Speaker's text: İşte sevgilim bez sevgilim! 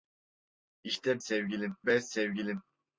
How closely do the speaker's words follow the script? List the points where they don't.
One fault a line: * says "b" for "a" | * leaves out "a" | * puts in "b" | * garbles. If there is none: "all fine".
all fine